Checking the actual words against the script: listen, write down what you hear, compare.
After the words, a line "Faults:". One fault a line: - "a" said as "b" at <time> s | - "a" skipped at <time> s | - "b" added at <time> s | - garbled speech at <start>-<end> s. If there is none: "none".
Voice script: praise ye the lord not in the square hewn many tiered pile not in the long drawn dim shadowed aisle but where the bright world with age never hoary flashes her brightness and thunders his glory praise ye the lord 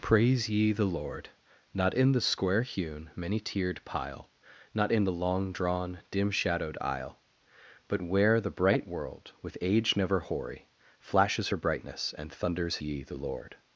praise ye the lord not in the square hewn many tiered pile not in the long drawn dim shadowed aisle but where the bright world with age never hoary flashes her brightness and thunders ye the lord
Faults:
- "his glory praise" skipped at 12.8 s